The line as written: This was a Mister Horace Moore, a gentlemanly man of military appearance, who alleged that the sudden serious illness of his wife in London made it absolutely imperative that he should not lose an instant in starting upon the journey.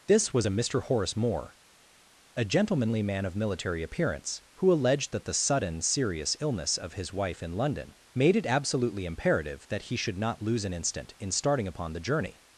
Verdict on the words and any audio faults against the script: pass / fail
pass